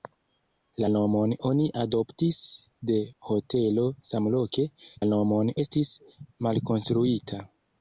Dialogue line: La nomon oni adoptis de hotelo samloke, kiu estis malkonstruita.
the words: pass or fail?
fail